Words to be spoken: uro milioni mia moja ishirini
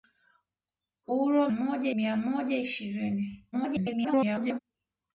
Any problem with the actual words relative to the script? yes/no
yes